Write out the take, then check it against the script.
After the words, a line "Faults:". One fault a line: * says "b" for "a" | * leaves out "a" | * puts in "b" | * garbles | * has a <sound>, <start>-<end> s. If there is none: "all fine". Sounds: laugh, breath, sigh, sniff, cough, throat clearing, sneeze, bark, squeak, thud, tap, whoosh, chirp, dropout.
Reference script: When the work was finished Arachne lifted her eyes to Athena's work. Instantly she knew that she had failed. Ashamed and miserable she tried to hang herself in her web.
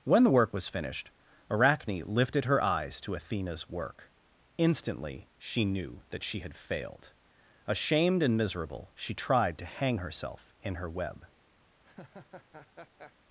When the work was finished Arachne lifted her eyes to Athena's work. Instantly she knew that she had failed. Ashamed and miserable she tried to hang herself in her web.
Faults:
* has a laugh, 11.8-13.1 s